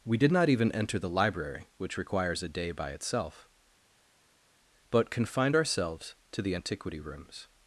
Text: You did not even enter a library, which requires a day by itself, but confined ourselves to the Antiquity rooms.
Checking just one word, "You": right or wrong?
wrong